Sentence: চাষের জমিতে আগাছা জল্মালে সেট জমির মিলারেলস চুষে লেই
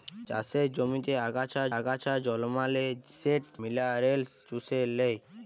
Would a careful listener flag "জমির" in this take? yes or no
yes